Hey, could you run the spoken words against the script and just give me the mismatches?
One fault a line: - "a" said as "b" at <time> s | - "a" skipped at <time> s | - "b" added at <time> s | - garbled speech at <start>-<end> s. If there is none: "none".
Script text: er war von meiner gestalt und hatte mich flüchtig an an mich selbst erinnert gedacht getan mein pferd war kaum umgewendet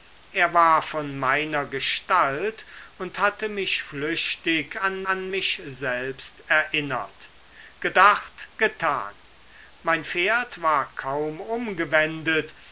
none